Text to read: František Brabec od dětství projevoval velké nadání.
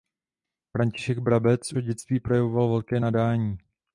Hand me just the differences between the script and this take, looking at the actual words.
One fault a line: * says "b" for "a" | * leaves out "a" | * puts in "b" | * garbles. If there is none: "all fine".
all fine